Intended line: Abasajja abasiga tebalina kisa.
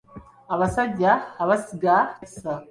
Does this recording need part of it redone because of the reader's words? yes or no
yes